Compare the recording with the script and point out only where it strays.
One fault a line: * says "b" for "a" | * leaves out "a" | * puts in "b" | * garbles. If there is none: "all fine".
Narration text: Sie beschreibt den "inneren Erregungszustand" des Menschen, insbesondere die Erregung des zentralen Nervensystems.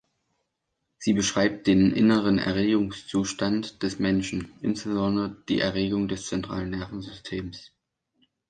all fine